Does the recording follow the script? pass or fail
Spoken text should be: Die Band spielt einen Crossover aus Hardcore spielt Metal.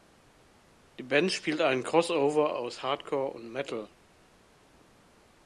fail